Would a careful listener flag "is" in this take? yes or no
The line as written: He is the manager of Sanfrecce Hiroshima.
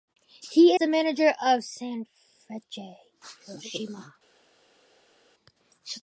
yes